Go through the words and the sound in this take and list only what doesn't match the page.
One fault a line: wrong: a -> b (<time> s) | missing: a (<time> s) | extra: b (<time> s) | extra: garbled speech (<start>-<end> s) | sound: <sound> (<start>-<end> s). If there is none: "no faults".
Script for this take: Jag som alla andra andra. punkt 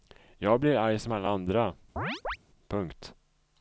extra: blir arg (0.6 s)
missing: andra (1.7 s)
sound: chirp (2.0-2.4 s)